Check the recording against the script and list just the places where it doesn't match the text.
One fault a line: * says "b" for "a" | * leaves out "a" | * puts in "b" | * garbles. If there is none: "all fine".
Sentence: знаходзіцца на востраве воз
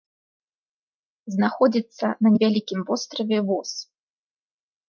* puts in "невялікім"